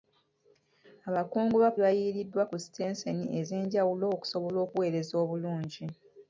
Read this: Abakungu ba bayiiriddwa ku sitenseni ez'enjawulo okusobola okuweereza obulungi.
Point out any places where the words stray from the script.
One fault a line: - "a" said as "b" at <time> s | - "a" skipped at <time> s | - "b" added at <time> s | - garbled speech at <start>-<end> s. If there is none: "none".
none